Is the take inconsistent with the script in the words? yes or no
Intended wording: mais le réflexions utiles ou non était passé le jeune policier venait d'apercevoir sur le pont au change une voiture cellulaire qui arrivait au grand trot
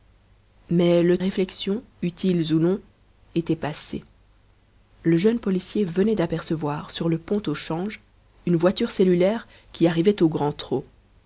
no